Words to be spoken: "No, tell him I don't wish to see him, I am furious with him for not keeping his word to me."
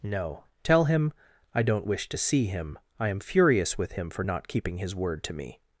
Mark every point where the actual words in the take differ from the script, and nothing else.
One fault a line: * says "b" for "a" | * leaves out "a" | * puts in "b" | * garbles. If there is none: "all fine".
all fine